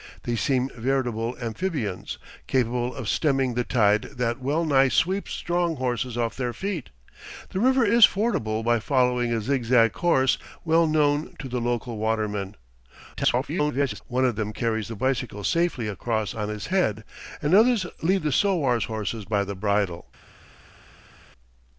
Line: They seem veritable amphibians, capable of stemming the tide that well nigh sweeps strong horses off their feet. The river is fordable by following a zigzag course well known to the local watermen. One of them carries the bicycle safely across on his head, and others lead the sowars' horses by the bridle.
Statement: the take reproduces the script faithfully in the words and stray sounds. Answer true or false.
false